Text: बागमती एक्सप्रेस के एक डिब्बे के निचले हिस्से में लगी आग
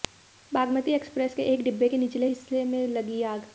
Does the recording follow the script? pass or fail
pass